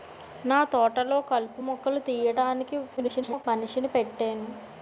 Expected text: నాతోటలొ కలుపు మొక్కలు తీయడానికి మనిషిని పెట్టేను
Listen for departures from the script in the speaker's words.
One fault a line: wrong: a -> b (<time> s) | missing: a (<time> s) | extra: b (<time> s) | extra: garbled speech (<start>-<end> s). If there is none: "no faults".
extra: garbled speech (3.0-3.4 s)